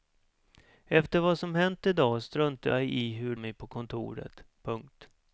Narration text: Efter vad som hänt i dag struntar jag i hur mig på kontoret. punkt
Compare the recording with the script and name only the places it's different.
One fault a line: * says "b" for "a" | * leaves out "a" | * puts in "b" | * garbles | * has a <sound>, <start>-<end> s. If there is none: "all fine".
all fine